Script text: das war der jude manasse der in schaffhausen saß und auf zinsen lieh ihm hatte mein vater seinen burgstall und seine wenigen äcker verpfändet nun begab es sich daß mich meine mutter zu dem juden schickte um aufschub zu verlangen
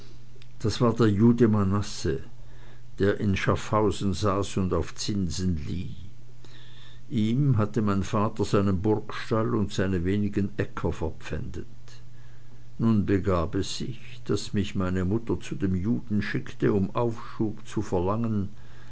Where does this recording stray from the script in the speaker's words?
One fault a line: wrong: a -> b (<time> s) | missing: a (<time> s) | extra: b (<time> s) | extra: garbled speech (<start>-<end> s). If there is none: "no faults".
no faults